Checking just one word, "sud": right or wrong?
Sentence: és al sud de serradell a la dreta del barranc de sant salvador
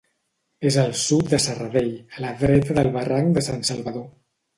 right